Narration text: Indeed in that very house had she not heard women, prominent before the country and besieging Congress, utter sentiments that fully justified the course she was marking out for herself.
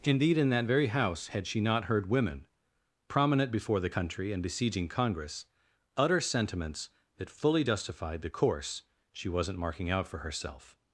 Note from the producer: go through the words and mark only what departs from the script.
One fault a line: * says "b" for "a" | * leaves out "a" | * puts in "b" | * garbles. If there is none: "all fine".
* says "wasn't" for "was"